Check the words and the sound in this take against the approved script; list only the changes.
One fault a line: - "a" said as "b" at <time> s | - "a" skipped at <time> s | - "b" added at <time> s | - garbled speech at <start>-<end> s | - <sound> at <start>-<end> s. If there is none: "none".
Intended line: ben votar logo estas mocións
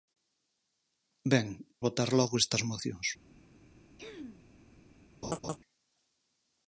- throat clearing at 4.0-4.5 s
- laugh at 5.2-5.6 s